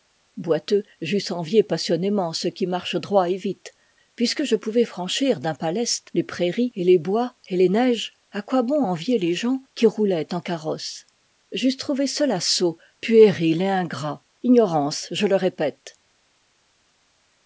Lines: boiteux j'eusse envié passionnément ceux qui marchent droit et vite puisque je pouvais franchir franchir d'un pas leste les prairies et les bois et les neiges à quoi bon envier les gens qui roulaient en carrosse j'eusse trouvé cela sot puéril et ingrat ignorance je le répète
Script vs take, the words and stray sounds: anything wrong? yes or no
yes